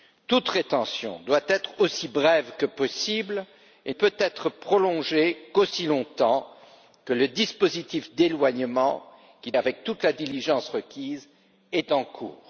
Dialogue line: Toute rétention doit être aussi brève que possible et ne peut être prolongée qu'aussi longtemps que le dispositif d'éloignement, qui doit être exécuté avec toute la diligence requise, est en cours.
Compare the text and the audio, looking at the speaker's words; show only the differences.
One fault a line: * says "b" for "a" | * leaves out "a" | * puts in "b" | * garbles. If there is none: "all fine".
* leaves out "ne"
* leaves out "doit être exécuté"